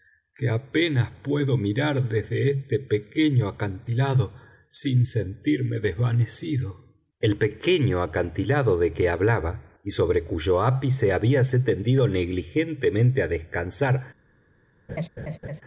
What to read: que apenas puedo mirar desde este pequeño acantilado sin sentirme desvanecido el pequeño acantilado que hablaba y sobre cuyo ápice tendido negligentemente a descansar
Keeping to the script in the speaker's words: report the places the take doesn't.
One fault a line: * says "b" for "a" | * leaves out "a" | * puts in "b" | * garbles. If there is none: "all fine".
* puts in "de"
* puts in "habíase"